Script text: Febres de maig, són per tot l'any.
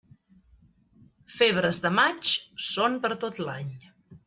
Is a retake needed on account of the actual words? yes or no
no